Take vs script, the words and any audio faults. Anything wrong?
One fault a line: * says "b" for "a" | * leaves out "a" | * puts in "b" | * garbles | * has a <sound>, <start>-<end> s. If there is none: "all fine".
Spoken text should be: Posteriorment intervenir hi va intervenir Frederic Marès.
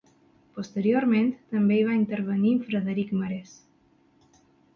* says "també" for "intervenir"